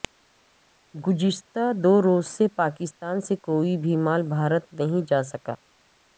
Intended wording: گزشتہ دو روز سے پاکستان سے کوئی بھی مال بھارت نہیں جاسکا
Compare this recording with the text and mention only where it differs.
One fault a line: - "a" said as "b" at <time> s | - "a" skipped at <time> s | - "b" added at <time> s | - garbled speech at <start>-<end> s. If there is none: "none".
none